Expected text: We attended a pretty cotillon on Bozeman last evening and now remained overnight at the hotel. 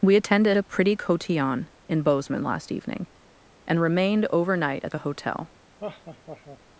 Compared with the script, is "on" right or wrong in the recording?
wrong